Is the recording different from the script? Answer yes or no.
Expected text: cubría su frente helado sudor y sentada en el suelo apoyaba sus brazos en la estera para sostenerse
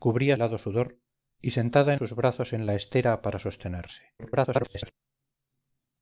yes